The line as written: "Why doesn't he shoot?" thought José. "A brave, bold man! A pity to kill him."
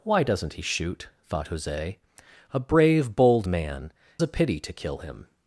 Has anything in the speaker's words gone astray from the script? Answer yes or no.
no